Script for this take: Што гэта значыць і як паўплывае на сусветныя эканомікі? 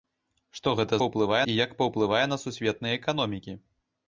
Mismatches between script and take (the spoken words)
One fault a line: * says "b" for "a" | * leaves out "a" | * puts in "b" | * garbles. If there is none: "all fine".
* says "паўплывае" for "значыць"